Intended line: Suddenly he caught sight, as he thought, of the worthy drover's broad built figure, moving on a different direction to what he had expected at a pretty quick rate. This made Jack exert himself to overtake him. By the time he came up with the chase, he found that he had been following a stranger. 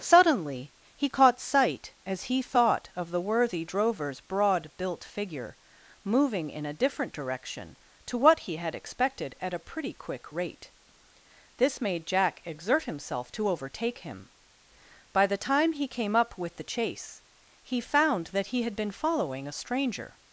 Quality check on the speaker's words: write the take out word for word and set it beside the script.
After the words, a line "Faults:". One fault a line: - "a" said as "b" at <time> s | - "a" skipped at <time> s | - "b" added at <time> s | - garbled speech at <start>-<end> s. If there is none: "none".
Suddenly he caught sight, as he thought, of the worthy drover's broad built figure, moving in a different direction to what he had expected at a pretty quick rate. This made Jack exert himself to overtake him. By the time he came up with the chase, he found that he had been following a stranger.
Faults:
- "on" said as "in" at 6.5 s